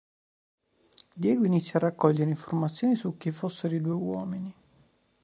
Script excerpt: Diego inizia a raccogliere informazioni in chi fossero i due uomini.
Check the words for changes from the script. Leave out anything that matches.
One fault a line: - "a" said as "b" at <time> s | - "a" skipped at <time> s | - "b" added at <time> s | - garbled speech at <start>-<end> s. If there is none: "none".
- "in" said as "su" at 3.0 s